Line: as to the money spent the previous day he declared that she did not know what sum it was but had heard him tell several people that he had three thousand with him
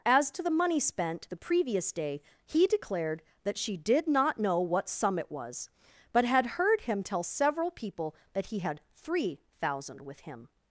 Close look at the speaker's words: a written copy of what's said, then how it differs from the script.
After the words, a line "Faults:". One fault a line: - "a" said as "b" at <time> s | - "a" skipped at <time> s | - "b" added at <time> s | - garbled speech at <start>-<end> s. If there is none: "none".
as to the money spent the previous day he declared that she did not know what sum it was but had heard him tell several people that he had three thousand with him
Faults:
none